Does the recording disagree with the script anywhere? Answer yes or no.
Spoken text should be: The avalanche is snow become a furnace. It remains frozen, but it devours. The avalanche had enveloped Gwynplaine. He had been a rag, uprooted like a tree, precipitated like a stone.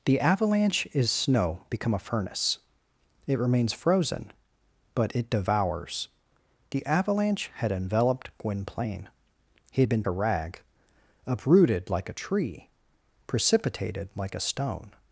no